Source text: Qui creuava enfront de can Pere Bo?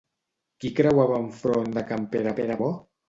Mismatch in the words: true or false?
true